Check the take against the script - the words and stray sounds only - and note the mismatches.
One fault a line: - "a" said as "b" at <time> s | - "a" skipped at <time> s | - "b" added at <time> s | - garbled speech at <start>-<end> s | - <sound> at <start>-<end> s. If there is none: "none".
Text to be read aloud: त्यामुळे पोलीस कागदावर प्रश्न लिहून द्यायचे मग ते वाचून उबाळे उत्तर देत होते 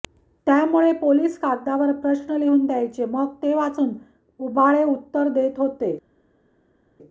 none